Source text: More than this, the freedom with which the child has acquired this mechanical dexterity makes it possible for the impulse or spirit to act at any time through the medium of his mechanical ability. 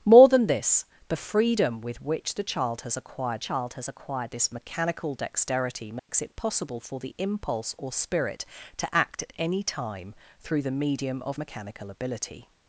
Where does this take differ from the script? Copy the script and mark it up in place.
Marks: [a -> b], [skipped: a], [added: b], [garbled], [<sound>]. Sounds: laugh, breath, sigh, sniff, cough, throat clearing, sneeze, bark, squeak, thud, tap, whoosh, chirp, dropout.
More than this, the freedom with which the child has acquired [added: child has acquired] this mechanical dexterity makes [dropout] it possible for the impulse or spirit to act at any time through the medium of [skipped: his] mechanical ability.